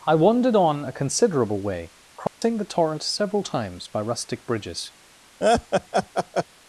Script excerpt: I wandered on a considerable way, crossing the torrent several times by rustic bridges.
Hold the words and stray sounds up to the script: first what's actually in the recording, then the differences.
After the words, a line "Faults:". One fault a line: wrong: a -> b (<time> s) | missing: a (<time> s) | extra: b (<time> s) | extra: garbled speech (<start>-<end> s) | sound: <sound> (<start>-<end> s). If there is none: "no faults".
I wandered on a considerable way, crossing the torrent several times by rustic bridges.
Faults:
sound: dropout (2.3-2.4 s)
sound: laugh (5.4-6.4 s)